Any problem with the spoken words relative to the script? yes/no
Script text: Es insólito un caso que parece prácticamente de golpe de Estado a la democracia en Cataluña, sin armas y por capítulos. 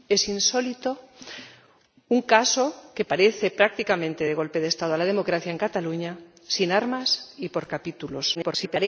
yes